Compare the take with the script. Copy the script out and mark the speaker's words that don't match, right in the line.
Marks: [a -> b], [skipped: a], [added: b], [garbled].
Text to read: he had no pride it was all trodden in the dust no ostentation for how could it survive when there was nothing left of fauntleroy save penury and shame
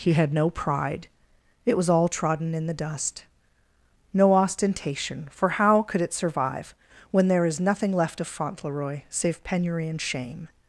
he had no pride it was all trodden in the dust no ostentation for how could it survive when there [was -> is] nothing left of fauntleroy save penury and shame